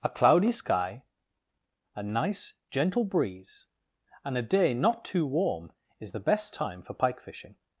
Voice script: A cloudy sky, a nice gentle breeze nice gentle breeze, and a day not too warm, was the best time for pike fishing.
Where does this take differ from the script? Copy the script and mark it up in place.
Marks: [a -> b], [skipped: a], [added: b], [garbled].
A cloudy sky, a nice gentle breeze [skipped: nice gentle breeze,] and a day not too warm, [was -> is] the best time for pike fishing.